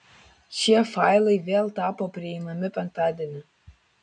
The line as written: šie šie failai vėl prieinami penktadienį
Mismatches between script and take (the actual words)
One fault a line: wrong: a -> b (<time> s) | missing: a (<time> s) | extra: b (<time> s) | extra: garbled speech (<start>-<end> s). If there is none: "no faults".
missing: šie (0.8 s)
extra: tapo (1.8 s)